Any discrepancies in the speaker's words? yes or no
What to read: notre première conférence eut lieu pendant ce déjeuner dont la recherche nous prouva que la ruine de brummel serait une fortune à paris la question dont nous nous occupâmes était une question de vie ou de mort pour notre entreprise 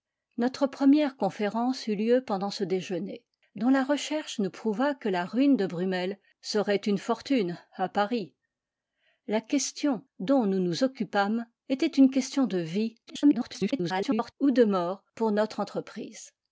yes